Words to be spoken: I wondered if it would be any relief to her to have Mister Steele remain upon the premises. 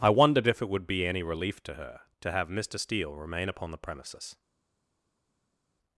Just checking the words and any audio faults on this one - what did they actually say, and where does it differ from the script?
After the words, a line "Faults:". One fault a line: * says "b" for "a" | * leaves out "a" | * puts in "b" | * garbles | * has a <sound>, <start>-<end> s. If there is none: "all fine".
I wondered if it would be any relief to her to have Mister Steele remain upon the premises.
Faults:
all fine